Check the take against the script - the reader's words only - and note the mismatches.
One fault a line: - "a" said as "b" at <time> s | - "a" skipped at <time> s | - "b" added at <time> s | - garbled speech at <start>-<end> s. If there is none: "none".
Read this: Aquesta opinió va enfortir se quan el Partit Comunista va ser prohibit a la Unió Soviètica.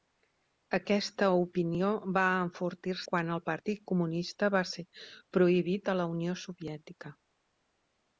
- "se" skipped at 3.0 s